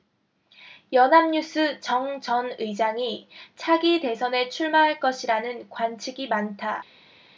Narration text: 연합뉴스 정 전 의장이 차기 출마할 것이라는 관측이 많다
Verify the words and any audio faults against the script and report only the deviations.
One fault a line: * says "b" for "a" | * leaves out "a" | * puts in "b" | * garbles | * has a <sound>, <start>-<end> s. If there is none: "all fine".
* puts in "대선에"